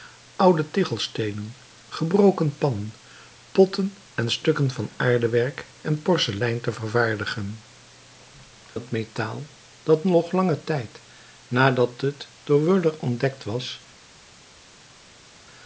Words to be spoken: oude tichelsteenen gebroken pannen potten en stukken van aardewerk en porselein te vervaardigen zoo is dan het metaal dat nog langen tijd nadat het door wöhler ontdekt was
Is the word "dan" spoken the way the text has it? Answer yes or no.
no